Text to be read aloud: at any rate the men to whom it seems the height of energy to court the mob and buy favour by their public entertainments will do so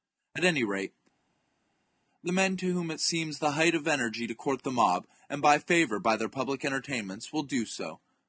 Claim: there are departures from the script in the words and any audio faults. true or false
false